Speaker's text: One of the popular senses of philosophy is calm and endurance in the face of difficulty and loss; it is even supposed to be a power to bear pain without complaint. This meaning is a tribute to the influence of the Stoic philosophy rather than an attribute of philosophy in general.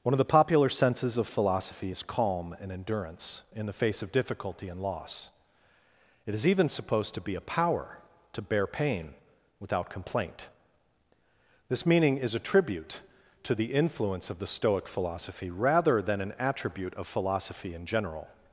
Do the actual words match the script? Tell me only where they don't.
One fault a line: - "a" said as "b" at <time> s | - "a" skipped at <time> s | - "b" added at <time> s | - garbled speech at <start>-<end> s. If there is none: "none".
none